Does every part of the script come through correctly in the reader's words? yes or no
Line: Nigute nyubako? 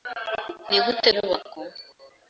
yes